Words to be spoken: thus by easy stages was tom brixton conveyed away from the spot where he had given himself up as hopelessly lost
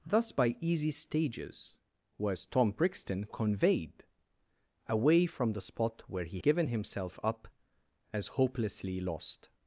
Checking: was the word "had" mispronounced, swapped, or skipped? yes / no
yes